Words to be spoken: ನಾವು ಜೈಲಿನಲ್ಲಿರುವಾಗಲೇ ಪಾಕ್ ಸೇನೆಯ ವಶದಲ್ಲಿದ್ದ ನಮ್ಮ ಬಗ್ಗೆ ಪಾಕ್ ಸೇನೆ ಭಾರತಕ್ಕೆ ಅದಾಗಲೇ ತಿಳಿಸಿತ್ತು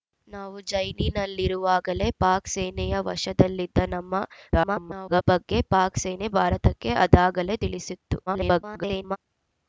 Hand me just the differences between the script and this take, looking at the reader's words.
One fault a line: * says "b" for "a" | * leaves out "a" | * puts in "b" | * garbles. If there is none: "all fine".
* garbles
* garbles